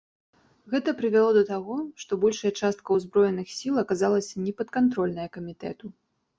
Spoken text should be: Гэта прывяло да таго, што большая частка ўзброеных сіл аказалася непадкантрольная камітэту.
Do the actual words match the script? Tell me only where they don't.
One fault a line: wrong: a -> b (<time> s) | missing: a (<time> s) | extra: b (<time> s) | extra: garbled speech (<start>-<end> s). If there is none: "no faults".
no faults